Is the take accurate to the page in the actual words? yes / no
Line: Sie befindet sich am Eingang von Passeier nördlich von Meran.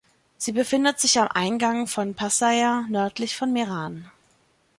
yes